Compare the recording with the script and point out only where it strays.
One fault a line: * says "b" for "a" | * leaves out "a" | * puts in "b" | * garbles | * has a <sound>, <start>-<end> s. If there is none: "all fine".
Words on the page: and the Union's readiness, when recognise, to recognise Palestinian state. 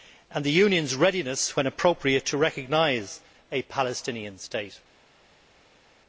* says "appropriate" for "recognise"
* puts in "a"